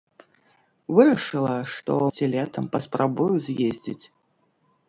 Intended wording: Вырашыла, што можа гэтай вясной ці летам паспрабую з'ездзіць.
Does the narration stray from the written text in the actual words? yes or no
yes